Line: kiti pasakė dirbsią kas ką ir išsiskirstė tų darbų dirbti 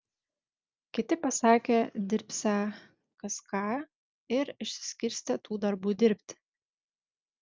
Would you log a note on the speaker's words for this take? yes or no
no